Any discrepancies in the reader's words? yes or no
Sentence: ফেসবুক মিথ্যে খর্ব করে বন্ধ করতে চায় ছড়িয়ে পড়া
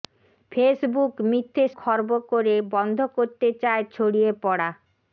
no